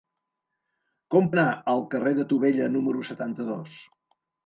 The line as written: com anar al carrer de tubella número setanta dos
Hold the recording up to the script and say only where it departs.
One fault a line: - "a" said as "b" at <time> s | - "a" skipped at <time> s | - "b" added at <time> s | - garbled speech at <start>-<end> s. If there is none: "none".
none